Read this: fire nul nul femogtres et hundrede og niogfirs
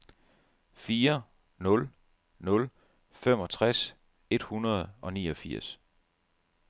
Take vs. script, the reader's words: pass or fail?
pass